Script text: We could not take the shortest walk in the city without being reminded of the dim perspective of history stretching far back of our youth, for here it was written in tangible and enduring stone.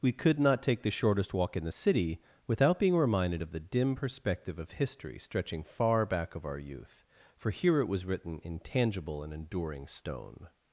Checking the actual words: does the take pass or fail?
pass